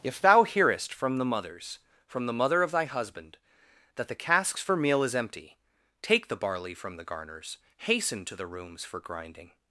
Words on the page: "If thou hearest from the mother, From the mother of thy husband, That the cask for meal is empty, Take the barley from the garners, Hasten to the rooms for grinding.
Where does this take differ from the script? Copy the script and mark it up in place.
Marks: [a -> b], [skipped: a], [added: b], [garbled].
"If thou hearest from the [mother, -> mothers] From the mother of thy husband, That the [cask -> casks] for meal is empty, Take the barley from the garners, Hasten to the rooms for grinding.